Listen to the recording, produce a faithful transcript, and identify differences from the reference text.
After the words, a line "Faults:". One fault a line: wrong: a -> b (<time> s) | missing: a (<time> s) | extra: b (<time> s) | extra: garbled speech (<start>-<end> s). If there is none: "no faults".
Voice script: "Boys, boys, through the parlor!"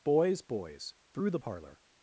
"Boys, boys, through the parlor!"
Faults:
no faults